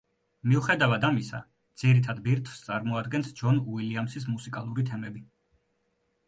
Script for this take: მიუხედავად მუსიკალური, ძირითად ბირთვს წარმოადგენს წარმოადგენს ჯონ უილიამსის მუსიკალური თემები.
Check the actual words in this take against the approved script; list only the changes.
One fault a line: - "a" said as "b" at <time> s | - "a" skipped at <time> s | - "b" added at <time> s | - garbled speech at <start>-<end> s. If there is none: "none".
- "მუსიკალური" said as "ამისა" at 1.1 s
- "წარმოადგენს" skipped at 3.3 s